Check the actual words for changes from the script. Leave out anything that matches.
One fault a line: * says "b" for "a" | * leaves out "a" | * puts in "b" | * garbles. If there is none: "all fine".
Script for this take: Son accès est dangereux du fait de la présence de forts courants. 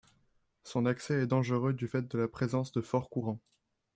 all fine